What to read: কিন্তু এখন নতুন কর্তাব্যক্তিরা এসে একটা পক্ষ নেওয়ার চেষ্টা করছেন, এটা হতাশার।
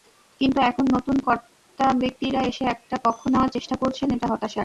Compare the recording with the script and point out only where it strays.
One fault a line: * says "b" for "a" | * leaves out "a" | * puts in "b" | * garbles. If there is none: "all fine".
all fine